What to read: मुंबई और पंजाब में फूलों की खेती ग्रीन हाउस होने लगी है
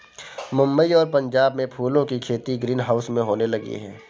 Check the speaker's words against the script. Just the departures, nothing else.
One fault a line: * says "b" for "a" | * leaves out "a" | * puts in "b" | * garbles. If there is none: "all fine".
* puts in "में"